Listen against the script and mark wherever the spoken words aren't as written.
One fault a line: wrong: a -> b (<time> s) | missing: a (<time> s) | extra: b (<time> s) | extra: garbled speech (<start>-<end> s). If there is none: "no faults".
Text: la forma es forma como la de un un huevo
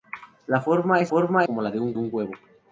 no faults